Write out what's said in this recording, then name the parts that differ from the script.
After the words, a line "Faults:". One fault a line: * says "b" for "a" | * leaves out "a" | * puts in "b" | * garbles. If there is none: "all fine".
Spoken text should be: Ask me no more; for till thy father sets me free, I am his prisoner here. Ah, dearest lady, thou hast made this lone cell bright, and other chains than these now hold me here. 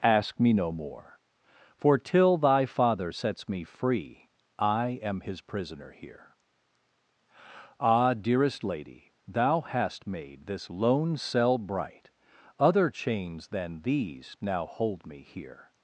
Ask me no more; for till thy father sets me free, I am his prisoner here. Ah, dearest lady, thou hast made this lone cell bright, other chains than these now hold me here.
Faults:
* leaves out "and"